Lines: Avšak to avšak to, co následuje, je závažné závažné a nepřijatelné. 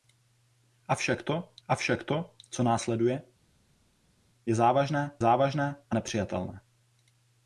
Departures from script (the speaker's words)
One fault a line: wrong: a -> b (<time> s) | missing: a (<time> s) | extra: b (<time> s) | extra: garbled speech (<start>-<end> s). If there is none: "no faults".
no faults